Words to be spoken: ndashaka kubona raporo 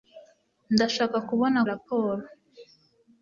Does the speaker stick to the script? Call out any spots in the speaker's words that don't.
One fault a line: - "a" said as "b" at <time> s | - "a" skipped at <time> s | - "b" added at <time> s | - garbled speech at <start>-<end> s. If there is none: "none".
none